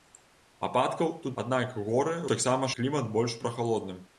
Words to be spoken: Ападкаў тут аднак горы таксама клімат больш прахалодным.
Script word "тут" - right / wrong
right